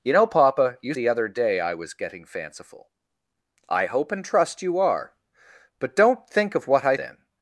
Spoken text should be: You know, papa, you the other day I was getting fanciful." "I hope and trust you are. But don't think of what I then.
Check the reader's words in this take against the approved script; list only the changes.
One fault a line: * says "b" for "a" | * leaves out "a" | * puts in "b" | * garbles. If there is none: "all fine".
all fine